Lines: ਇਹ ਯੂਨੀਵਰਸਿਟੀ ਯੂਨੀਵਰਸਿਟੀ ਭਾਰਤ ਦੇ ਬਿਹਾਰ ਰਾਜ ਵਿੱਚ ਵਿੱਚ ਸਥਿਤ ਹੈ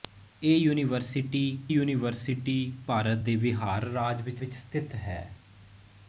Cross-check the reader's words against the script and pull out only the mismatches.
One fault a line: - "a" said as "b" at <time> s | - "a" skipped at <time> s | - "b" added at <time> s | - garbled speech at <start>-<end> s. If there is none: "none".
none